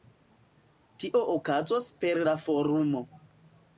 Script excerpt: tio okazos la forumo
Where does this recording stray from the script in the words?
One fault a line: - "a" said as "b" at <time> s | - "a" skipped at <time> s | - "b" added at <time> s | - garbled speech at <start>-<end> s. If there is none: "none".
- "per" added at 2.0 s